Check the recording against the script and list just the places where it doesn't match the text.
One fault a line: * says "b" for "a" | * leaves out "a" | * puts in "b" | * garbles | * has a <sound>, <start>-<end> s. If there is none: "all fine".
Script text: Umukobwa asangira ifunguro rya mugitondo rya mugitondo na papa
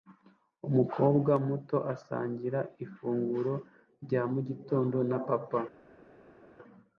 * puts in "muto"
* leaves out "rya mugitondo"